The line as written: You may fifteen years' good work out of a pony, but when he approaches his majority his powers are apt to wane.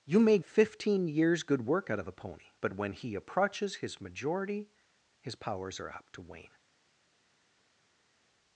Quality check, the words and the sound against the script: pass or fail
pass